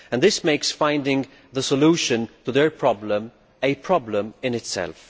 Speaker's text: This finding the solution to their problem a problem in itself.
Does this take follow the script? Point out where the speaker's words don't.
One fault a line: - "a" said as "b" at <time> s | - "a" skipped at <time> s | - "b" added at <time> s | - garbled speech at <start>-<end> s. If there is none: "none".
- "makes" added at 0.4 s